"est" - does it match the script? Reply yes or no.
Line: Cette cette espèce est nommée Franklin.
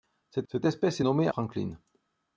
yes